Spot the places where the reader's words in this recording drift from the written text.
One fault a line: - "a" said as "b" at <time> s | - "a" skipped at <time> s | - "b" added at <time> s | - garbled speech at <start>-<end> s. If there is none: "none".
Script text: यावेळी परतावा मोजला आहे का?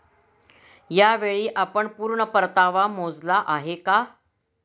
- "आपण पूर्ण" added at 1.6 s